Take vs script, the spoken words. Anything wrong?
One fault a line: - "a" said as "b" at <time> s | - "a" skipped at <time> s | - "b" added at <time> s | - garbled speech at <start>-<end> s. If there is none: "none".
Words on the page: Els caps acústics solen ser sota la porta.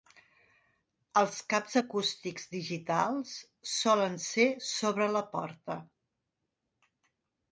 - "digitals" added at 2.5 s
- "sota" said as "sobre" at 4.7 s